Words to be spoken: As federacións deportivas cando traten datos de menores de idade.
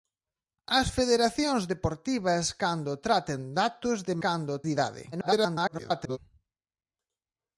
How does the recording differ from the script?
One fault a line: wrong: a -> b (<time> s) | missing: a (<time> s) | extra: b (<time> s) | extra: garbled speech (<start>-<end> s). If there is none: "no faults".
wrong: menores -> cando (4.2 s)
extra: garbled speech (5.1-6.2 s)